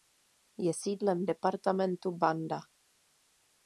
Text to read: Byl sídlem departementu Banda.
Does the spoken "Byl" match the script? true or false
false